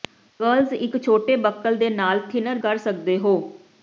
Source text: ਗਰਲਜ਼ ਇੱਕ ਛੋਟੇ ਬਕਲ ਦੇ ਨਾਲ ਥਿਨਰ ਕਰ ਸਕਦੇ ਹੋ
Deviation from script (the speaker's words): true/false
false